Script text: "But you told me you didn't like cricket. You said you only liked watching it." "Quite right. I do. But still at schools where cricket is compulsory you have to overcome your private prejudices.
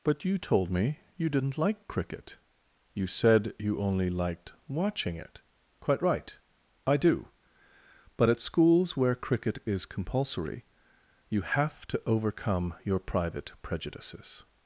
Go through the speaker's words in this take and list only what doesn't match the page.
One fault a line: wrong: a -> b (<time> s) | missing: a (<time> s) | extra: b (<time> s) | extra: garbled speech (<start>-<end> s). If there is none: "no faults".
missing: still (8.3 s)